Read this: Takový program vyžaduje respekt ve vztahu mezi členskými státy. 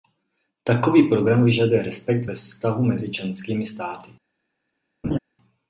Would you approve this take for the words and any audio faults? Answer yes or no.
no